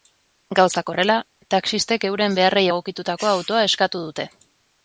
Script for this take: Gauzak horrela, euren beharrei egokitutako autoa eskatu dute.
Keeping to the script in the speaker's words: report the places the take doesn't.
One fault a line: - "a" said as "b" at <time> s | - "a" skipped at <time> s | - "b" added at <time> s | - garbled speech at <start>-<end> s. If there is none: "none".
- "taxistek" added at 1.5 s